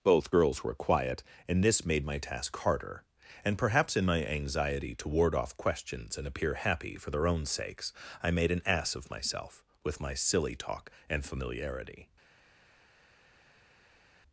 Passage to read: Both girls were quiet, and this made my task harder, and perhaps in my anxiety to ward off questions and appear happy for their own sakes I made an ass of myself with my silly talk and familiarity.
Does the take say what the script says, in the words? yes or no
yes